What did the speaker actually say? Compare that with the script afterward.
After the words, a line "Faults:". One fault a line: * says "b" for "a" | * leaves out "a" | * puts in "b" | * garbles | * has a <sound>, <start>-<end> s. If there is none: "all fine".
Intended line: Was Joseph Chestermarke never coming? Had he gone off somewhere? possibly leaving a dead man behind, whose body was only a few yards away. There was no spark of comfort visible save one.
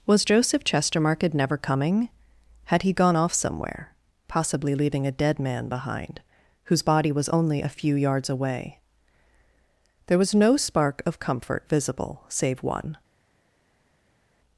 Was Joseph Chestermarke never coming? Had he gone off somewhere? possibly leaving a dead man behind, whose body was only a few yards away. There was no spark of comfort visible save one.
Faults:
all fine